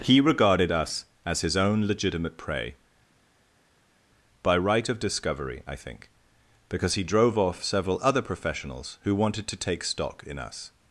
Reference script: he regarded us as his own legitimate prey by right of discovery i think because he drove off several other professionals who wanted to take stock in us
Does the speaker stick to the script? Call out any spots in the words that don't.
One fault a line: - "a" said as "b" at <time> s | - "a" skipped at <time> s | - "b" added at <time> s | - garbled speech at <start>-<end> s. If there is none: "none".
none